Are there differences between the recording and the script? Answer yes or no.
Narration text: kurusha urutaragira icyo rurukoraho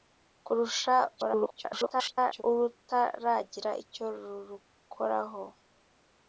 yes